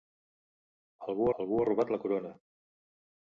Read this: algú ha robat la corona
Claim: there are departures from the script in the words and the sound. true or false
true